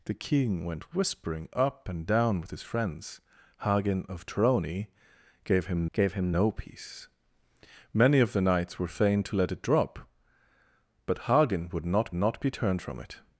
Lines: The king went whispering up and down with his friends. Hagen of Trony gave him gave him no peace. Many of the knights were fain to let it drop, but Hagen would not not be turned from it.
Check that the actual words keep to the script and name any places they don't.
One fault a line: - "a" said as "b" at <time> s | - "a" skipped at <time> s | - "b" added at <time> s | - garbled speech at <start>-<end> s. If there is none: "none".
none